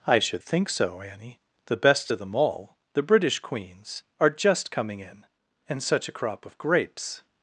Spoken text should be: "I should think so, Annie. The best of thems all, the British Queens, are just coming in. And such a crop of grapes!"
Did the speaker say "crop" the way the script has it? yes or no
yes